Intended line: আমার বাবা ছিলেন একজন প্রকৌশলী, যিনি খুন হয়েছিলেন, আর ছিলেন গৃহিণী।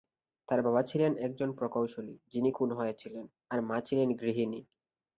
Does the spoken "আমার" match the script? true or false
false